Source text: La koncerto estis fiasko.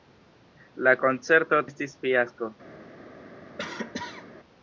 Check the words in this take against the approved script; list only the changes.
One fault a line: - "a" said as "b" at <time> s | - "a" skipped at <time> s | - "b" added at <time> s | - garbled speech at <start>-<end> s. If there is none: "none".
none